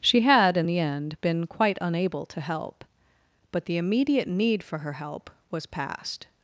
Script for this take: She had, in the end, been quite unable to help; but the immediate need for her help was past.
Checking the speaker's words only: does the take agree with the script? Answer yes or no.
yes